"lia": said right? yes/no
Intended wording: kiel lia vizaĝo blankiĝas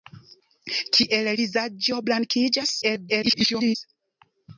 no